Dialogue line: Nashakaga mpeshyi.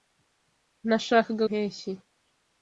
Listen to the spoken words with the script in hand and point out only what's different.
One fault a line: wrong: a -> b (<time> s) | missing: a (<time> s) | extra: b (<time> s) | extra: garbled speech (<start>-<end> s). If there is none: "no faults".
no faults